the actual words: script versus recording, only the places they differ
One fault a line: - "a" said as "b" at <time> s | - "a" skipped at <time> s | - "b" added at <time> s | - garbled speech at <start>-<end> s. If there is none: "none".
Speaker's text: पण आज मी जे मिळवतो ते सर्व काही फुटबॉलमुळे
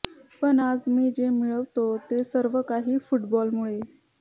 none